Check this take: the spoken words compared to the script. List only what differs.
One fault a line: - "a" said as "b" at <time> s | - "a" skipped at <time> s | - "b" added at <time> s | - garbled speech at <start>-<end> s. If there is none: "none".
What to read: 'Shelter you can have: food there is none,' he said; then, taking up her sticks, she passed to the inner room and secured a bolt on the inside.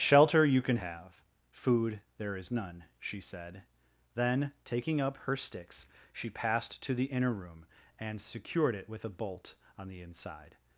- "he" said as "she" at 3.0 s
- "it with" added at 8.8 s